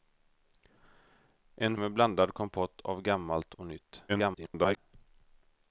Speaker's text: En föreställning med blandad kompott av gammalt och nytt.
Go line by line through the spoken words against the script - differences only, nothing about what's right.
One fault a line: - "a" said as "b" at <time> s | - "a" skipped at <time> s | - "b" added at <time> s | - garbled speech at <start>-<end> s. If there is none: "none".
- "föreställning" skipped at 1.8 s
- garbled speech at 4.1-4.8 s